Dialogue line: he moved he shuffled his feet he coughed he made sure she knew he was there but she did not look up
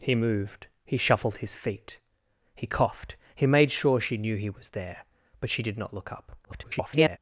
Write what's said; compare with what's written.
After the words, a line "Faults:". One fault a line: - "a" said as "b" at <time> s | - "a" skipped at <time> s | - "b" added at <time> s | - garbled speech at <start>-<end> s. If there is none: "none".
he moved he shuffled his feet he coughed he made sure she knew he was there but she did not look up [garbled]
Faults:
- garbled speech at 6.4-7.2 s